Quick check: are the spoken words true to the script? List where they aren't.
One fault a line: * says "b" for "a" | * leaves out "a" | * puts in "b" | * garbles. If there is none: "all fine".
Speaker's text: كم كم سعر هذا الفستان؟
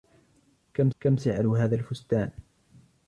all fine